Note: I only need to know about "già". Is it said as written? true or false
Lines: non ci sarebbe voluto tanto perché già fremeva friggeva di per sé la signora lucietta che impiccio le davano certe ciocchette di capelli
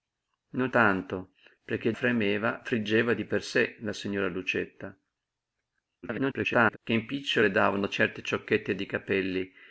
false